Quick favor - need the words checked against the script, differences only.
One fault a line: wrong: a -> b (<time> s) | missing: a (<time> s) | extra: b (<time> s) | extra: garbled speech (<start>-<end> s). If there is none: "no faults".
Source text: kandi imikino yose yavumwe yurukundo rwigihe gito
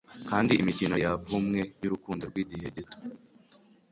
missing: yose (0.9 s)